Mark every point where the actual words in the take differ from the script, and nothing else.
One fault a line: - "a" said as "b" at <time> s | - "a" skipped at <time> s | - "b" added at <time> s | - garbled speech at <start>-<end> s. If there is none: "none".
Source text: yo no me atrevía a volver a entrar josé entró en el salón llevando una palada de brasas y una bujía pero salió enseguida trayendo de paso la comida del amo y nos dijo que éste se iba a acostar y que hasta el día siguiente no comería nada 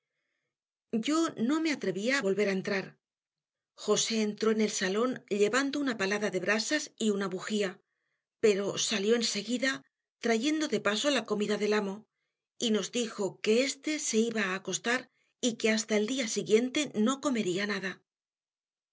none